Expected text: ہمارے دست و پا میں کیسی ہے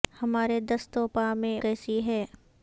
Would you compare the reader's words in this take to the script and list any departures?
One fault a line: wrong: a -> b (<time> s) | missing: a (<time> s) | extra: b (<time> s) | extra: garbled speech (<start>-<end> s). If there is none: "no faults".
no faults